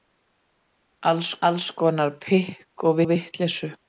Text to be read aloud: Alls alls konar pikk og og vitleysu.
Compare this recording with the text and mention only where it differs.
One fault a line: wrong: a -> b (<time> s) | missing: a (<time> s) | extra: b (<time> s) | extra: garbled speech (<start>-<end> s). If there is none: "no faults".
no faults